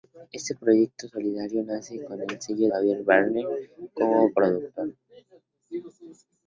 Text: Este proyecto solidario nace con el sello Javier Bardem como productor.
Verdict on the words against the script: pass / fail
pass